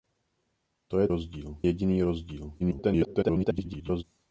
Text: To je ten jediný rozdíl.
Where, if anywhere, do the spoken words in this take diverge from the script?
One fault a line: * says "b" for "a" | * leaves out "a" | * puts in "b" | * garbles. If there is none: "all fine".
* says "rozdíl" for "ten"
* garbles